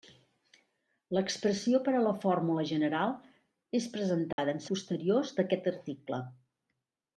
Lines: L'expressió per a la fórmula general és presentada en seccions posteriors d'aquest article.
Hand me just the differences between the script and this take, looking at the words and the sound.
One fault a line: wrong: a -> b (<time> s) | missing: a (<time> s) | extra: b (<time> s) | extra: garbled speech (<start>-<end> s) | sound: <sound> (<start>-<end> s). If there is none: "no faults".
sound: dropout (4.3-4.4 s)
missing: seccions (4.7 s)